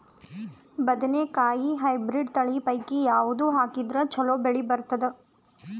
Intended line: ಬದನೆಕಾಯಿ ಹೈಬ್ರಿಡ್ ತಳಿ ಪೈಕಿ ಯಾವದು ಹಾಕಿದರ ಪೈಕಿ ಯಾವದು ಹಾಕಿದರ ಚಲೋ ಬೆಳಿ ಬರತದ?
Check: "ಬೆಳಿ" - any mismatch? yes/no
no